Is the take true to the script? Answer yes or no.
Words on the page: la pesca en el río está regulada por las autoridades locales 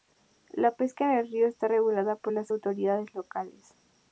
yes